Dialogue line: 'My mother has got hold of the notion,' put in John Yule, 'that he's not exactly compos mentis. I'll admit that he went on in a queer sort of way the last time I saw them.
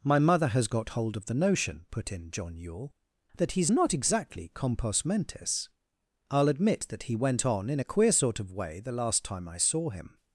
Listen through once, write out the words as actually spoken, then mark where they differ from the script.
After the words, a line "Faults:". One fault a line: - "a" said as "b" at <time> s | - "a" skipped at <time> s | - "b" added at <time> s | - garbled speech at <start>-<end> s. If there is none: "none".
'My mother has got hold of the notion,' put in John Yule, 'that he's not exactly compos mentis. I'll admit that he went on in a queer sort of way the last time I saw him.
Faults:
- "them" said as "him" at 9.9 s